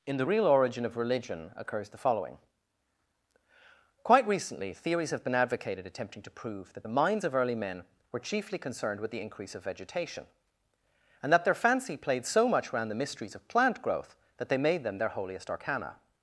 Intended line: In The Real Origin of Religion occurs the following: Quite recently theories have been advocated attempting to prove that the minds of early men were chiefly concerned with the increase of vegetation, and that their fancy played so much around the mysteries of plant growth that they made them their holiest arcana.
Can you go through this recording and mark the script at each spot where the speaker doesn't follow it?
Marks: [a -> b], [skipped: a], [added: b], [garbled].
In The Real Origin of Religion occurs the following: Quite recently theories have been advocated attempting to prove that the minds of early men were chiefly concerned with the increase of vegetation, and that their fancy played so much around the mysteries of plant growth that they made them their holiest arcana.